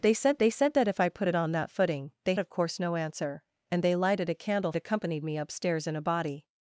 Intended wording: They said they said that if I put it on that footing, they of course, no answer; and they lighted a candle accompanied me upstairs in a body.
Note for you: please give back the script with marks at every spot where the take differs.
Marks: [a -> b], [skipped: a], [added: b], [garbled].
They said they said that if I put it on that footing, they of course, no answer; and they lighted a candle accompanied me upstairs in a body.